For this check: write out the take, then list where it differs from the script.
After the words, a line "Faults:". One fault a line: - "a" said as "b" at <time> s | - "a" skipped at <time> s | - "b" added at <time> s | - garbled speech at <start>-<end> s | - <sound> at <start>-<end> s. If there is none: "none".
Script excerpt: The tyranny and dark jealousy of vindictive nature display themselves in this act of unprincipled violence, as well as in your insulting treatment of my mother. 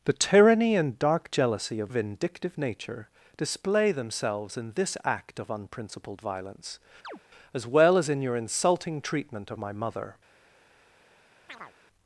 The tyranny and dark jealousy of vindictive nature display themselves in this act of unprincipled violence, as well as in your insulting treatment of my mother.
Faults:
- chirp at 7.0-7.2 s
- chirp at 11.5-11.7 s